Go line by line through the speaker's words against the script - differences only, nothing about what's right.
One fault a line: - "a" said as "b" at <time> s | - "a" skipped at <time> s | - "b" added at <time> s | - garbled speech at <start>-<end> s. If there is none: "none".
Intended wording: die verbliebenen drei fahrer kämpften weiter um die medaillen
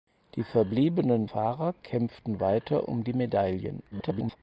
- "drei" skipped at 1.3 s
- garbled speech at 3.9-4.4 s